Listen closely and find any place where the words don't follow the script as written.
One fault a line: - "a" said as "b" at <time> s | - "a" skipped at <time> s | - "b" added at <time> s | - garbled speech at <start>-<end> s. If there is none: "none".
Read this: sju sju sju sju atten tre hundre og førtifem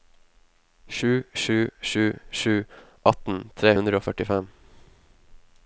none